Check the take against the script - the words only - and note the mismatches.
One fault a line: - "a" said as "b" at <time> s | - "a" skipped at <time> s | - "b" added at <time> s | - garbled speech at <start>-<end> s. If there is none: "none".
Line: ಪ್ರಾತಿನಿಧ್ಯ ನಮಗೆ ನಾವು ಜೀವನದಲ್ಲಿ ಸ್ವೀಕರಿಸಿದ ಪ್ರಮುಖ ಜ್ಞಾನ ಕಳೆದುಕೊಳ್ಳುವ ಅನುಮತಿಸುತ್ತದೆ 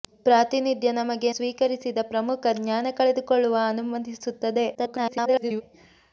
- "ನಾವು ಜೀವನದಲ್ಲಿ" skipped at 1.3 s
- garbled speech at 4.7-5.6 s